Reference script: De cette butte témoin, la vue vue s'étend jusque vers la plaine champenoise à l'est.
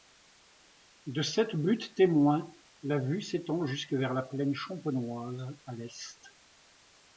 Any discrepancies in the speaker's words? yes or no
yes